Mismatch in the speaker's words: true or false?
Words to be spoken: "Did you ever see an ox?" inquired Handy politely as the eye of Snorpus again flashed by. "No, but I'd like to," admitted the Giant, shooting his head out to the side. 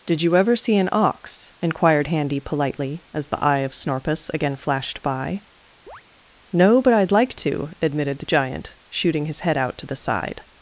false